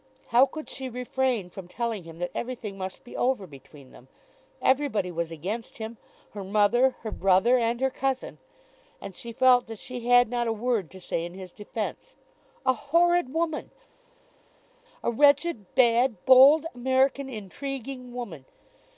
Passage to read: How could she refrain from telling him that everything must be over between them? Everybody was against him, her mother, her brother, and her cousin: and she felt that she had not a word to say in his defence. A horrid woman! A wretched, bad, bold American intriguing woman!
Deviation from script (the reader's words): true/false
false